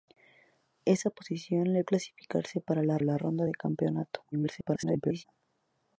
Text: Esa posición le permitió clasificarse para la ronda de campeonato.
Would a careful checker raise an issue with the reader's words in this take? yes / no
yes